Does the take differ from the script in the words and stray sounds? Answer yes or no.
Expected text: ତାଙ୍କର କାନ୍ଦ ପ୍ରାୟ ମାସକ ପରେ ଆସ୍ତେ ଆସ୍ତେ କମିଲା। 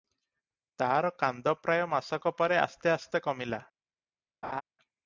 yes